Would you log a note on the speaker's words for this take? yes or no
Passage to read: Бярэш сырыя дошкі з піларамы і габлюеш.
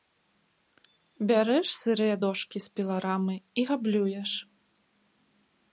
no